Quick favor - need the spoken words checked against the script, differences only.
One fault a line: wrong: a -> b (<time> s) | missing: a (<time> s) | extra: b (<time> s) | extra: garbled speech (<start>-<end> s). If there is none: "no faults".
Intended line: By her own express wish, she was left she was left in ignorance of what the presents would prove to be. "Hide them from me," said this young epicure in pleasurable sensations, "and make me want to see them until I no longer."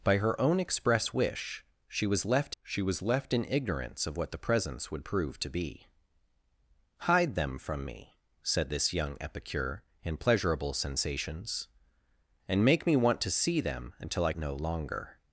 no faults